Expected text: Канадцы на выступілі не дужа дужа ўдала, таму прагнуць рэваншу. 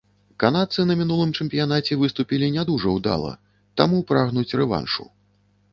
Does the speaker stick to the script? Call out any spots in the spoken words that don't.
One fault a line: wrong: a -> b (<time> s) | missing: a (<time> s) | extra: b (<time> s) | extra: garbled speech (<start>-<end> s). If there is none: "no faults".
extra: мінулым чэмпіянаце (1.0 s)
missing: дужа (2.9 s)